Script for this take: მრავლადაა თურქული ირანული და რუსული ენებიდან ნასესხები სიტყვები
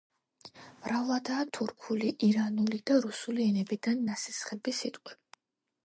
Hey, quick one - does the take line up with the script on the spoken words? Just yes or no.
yes